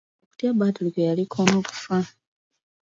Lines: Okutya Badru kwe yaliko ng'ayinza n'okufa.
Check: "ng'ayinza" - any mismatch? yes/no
yes